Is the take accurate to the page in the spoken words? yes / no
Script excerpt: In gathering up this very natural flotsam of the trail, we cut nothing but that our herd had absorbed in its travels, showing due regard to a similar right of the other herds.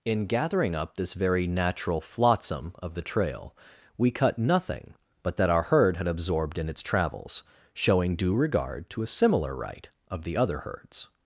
yes